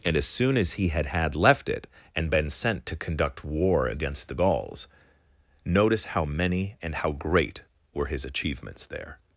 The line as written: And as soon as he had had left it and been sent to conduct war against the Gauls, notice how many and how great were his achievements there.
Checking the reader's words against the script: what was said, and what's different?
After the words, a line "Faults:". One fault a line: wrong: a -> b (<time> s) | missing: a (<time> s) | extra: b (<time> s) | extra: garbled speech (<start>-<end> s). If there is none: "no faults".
And as soon as he had had left it and been sent to conduct war against the Gauls, notice how many and how great were his achievements there.
Faults:
no faults